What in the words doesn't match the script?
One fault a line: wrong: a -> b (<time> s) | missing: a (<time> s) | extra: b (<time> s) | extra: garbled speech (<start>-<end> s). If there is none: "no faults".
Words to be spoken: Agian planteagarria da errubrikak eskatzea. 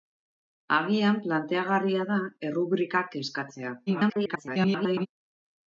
extra: garbled speech (3.9-5.1 s)